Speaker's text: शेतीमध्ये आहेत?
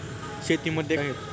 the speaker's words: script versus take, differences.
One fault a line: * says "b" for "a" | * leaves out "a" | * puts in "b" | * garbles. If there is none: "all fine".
all fine